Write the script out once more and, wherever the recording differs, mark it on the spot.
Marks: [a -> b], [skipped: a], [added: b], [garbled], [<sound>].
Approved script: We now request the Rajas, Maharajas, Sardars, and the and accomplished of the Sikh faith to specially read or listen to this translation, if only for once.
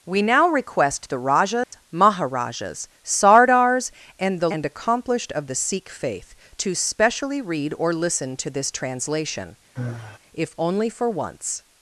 We now request the Rajas, [dropout] Maharajas, Sardars, and the and accomplished of the Sikh faith to specially read or listen to this translation, [sigh] if only for once.